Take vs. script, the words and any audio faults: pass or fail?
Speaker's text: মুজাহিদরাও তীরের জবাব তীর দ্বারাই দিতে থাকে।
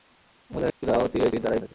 fail